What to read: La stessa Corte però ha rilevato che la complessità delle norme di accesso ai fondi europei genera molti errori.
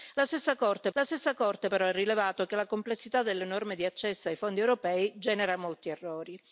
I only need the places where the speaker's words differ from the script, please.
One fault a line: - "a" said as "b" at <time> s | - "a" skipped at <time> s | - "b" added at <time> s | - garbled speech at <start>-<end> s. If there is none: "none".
- "la stessa Corte" added at 0.9 s